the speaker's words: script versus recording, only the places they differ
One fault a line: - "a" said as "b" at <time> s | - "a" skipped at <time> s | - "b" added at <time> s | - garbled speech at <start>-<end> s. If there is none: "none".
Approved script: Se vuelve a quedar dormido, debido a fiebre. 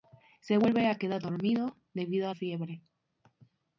none